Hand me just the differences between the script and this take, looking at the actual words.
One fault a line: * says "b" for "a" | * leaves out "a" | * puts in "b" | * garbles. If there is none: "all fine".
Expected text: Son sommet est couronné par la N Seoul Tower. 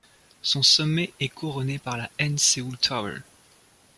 all fine